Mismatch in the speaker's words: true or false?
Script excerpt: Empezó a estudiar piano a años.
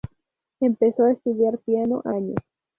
false